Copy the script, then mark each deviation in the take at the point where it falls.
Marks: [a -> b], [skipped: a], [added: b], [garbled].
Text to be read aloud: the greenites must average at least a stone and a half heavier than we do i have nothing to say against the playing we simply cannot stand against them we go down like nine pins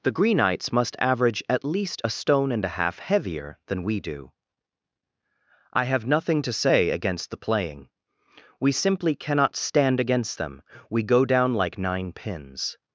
the greenites must average at least a stone and a half heavier than we do i have nothing to say against the playing we simply cannot stand against them we go down like nine pins